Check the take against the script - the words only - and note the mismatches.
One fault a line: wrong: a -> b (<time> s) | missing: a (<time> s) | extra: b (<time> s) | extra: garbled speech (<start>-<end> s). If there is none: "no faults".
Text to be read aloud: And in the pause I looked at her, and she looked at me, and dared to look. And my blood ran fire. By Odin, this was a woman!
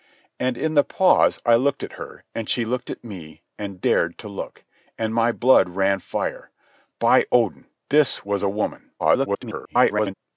extra: garbled speech (9.0-10.1 s)